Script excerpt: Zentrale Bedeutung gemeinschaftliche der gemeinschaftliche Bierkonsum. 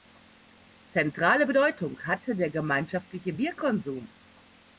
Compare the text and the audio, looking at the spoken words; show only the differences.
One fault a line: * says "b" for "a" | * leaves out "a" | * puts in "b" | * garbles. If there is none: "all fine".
* says "hatte" for "gemeinschaftliche"